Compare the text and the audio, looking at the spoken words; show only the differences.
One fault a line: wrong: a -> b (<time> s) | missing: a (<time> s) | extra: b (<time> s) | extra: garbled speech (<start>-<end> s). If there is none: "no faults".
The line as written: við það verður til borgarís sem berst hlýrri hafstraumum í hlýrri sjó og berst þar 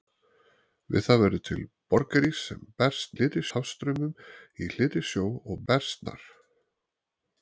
no faults